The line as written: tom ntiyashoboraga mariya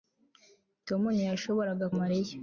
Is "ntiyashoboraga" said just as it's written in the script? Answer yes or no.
yes